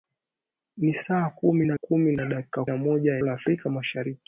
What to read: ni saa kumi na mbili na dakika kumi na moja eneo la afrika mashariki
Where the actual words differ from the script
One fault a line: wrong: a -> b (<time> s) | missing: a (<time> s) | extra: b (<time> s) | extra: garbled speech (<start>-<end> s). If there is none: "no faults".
wrong: mbili -> kumi (1.7 s)
missing: kumi (2.6 s)
missing: eneo (3.2 s)